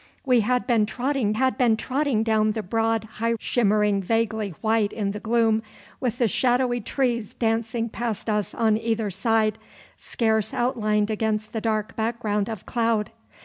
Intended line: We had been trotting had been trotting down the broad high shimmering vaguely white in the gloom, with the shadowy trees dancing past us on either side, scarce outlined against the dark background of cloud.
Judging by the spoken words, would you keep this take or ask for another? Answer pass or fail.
pass